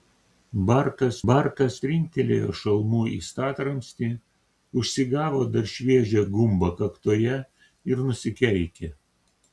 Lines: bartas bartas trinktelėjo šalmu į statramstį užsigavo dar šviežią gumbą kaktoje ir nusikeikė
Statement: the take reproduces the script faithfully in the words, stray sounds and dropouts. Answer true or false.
true